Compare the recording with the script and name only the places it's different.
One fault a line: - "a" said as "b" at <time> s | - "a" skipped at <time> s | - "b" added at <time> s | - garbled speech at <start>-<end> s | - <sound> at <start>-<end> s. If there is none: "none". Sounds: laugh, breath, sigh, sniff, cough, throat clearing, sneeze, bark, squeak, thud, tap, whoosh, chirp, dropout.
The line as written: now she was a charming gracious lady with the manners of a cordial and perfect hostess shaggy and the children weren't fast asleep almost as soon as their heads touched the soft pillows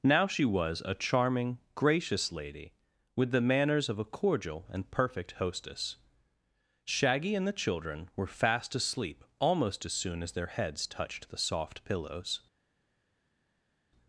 - "weren't" said as "were" at 8.2 s